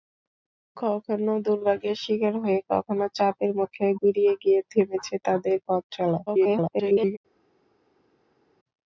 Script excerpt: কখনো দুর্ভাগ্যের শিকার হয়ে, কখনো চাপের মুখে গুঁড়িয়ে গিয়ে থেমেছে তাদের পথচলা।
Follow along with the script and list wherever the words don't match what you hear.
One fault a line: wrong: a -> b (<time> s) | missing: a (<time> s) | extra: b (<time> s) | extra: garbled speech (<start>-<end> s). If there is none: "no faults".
extra: garbled speech (6.3-7.2 s)